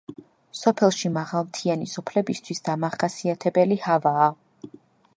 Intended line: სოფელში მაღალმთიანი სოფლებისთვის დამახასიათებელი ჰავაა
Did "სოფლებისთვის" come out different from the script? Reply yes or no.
no